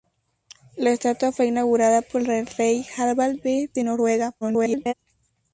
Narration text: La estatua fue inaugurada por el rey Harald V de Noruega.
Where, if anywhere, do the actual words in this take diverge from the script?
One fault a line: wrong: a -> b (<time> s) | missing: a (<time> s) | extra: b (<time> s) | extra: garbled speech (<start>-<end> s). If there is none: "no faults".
extra: garbled speech (4.4-4.9 s)